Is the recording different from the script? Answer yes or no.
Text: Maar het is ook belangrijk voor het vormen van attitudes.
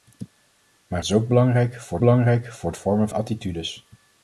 yes